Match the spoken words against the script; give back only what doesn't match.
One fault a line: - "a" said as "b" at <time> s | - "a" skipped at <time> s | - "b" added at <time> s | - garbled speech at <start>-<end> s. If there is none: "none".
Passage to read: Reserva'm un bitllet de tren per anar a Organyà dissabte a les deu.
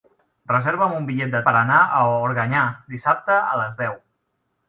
- "tren" skipped at 1.4 s